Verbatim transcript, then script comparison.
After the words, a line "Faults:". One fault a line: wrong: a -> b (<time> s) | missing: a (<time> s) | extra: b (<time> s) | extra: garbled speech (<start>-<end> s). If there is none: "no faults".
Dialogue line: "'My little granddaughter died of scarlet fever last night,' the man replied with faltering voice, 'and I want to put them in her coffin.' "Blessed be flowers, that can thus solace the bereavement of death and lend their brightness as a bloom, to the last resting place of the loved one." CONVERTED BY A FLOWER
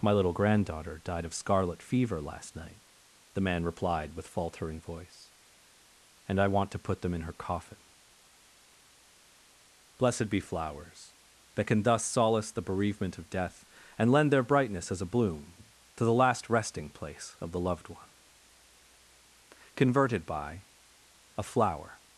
"'My little granddaughter died of scarlet fever last night,' the man replied with faltering voice, 'and I want to put them in her coffin.' "Blessed be flowers, that can thus solace the bereavement of death and lend their brightness as a bloom, to the last resting place of the loved one." CONVERTED BY A FLOWER
Faults:
no faults